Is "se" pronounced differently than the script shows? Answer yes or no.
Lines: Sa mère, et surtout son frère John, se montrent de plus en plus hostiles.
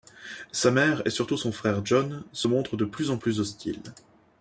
no